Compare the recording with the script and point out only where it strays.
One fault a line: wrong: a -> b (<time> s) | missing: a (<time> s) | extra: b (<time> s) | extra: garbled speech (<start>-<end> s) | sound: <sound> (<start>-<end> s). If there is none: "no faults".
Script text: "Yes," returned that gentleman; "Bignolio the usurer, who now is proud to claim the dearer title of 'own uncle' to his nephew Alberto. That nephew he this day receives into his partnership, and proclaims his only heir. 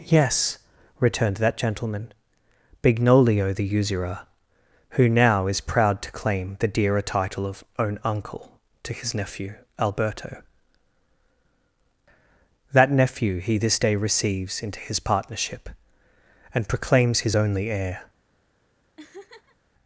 sound: laugh (19.0-19.6 s)